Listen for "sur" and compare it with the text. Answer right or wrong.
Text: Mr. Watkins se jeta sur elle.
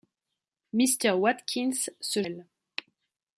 wrong